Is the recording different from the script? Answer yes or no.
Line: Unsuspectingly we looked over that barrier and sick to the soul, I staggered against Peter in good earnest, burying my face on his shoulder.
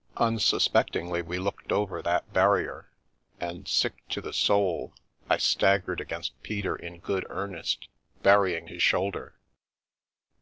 yes